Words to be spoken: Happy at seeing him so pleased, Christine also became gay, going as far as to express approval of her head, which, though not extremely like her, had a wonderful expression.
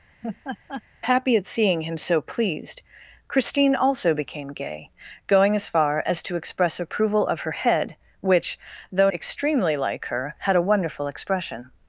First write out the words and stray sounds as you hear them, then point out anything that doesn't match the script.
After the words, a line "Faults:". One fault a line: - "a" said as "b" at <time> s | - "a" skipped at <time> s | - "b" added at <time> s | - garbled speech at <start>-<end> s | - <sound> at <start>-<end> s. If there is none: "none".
Happy at seeing him so pleased, Christine also became gay, going as far as to express approval of her head, which, though extremely like her, had a wonderful expression.
Faults:
- laugh at 0.2-0.8 s
- "not" skipped at 9.1 s